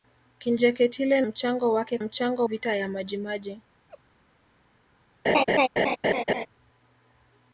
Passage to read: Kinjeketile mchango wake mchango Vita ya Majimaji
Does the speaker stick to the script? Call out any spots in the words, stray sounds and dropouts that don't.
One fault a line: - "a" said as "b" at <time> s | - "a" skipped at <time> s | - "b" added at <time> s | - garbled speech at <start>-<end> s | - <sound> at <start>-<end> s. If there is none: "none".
- laugh at 3.9-4.0 s
- laugh at 5.2-6.5 s